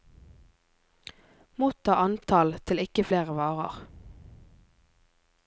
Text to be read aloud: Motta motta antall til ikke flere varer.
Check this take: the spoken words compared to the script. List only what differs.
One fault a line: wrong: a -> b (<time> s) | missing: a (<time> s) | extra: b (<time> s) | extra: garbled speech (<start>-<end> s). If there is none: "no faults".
missing: motta (2.0 s)